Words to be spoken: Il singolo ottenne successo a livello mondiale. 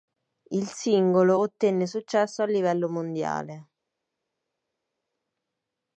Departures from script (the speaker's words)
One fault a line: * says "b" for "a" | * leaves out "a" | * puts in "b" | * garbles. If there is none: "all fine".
all fine